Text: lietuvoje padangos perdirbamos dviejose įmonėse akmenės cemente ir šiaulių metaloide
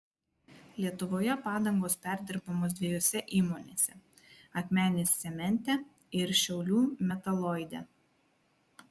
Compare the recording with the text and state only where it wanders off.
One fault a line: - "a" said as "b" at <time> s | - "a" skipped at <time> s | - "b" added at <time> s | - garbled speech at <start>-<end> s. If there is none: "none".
none